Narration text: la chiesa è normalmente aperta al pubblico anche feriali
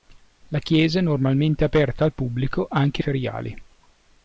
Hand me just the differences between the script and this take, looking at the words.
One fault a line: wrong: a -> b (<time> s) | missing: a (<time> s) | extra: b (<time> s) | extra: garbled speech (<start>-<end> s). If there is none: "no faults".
no faults